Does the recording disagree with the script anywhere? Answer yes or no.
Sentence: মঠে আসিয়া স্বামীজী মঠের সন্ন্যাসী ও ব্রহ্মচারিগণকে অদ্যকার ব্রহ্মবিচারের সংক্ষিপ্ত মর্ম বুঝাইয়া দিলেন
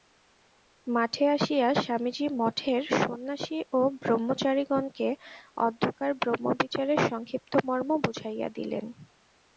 no